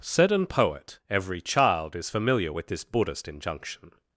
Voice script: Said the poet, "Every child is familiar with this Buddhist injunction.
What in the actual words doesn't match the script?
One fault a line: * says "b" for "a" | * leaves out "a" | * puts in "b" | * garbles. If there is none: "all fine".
* says "an" for "the"